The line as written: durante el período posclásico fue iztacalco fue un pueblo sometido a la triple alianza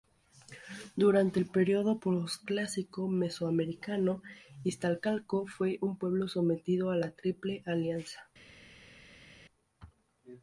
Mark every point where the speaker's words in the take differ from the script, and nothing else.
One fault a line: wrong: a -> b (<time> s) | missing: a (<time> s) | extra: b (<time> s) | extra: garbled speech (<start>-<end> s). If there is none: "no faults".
wrong: fue -> mesoamericano (3.1 s)